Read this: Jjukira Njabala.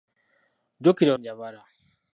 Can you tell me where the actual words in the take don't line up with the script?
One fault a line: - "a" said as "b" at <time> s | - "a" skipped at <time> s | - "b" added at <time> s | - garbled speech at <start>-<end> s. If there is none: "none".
none